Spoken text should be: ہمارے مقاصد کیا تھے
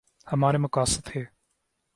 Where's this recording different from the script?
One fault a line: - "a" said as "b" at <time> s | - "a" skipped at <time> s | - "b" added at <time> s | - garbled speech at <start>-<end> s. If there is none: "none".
- "کیا" skipped at 1.0 s